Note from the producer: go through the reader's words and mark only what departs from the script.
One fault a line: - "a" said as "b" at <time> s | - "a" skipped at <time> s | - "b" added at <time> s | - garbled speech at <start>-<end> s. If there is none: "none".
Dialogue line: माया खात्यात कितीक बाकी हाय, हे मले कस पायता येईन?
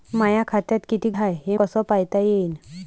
- "बाकी" skipped at 1.2 s
- "मले" skipped at 1.6 s